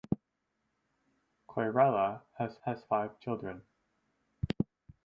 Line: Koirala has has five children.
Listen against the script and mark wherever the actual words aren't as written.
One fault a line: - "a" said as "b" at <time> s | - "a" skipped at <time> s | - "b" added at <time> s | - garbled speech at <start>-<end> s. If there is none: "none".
none